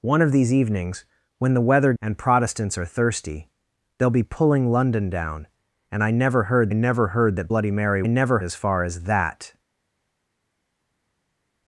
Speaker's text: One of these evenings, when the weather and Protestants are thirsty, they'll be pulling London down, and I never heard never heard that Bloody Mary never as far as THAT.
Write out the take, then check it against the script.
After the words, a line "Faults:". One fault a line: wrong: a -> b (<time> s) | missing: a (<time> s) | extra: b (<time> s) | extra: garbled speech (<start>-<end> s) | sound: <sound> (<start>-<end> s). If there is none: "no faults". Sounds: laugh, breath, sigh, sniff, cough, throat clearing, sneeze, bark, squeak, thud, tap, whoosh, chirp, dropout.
One of these evenings, when the weather and Protestants are thirsty, they'll be pulling London down, and I never heard never heard that Bloody Mary never as far as THAT.
Faults:
no faults